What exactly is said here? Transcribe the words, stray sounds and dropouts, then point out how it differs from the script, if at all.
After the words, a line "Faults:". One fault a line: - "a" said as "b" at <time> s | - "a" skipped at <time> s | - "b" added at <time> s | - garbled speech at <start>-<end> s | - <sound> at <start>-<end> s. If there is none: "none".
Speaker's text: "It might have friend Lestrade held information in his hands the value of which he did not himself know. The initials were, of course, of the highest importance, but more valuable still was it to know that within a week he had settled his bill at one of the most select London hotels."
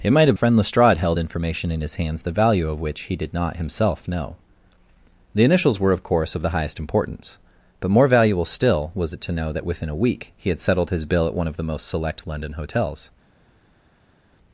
"It might have friend Lestrade held information in his hands the value of which he did not himself know. The initials were, of course, of the highest importance, but more valuable still was it to know that within a week he had settled his bill at one of the most select London hotels."
Faults:
none